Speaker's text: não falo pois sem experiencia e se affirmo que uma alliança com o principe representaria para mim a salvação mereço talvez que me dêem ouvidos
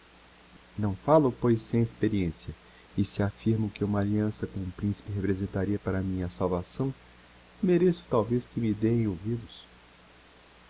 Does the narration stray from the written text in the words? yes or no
no